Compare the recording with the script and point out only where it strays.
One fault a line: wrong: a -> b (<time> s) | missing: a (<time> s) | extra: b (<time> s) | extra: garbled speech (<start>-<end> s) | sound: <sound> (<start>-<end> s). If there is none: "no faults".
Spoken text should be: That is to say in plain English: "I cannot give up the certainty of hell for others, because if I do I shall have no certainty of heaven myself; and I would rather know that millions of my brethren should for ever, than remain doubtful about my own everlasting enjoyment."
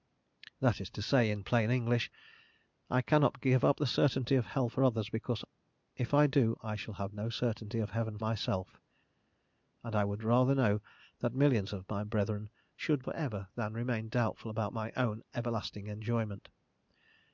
no faults